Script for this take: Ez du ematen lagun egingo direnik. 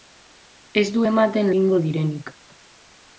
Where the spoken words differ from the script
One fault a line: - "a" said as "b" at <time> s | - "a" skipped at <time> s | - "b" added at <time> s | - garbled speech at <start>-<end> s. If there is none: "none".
- "lagun" skipped at 1.5 s